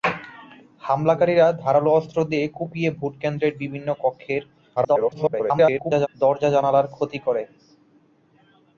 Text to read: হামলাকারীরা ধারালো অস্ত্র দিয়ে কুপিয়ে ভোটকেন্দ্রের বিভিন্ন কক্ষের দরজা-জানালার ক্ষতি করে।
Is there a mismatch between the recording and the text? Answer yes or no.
yes